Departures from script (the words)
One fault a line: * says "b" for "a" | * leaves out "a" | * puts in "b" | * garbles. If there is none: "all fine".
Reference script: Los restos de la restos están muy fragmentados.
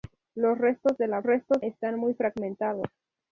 all fine